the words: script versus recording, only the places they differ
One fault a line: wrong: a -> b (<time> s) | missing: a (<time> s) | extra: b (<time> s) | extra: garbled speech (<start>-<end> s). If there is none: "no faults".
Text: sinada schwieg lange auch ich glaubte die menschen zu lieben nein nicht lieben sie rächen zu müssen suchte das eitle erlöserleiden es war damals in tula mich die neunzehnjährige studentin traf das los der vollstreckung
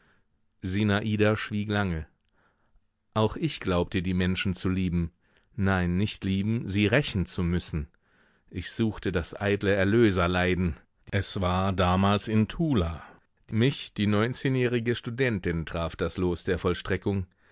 extra: ich (8.5 s)